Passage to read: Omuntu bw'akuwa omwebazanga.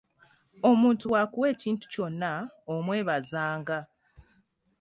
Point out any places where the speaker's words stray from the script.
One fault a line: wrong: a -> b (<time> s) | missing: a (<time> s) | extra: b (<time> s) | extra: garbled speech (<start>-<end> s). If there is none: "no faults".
extra: ekintu kyonna (1.5 s)